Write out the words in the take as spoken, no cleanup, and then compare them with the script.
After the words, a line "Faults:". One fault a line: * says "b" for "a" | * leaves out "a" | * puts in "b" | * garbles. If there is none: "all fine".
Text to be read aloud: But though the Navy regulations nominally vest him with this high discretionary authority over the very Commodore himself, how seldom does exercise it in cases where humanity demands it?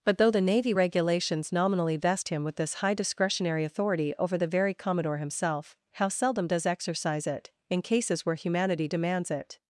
But though the Navy regulations nominally vest him with this high discretionary authority over the very Commodore himself, how seldom does exercise it in cases where humanity demands it?
Faults:
all fine